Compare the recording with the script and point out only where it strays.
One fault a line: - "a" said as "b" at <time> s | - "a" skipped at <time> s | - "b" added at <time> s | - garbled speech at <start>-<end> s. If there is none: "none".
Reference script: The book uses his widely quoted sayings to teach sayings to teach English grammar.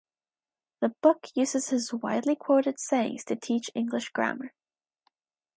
- "sayings to teach" skipped at 3.7 s